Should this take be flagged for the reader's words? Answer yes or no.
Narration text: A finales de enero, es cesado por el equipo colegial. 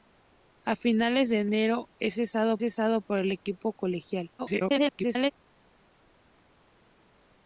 yes